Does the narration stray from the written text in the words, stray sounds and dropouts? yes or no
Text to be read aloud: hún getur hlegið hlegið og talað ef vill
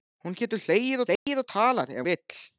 yes